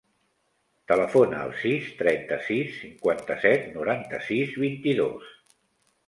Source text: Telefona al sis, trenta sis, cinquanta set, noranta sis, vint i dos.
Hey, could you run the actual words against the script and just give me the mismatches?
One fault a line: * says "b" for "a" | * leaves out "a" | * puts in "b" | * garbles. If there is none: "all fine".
all fine